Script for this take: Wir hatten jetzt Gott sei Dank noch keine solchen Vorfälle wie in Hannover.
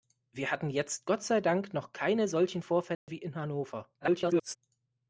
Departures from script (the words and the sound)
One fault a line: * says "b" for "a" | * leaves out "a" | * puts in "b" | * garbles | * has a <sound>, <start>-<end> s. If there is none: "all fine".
* has a dropout, 2.9-3.1 s
* garbles